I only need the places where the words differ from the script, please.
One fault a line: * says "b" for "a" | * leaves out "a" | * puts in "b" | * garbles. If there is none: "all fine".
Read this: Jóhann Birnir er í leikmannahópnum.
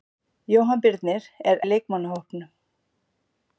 all fine